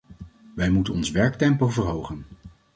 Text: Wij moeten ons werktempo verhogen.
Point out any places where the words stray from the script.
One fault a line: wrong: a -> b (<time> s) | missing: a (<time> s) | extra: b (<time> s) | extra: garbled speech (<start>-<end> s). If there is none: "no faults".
no faults